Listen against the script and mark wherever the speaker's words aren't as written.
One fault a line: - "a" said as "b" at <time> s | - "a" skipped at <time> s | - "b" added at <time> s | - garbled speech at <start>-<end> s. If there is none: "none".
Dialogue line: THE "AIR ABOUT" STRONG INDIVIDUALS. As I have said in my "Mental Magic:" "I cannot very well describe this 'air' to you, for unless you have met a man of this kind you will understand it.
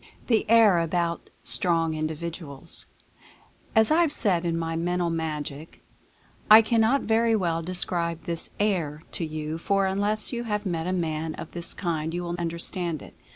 none